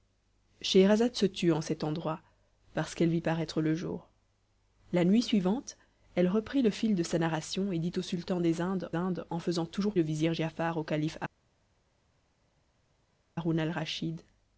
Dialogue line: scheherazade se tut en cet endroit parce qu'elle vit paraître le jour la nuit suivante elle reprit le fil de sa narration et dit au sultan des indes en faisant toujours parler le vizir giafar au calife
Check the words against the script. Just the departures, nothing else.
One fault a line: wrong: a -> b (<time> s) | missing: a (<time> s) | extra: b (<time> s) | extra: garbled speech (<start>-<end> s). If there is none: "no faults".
extra: indes (9.0 s)
missing: parler (10.0 s)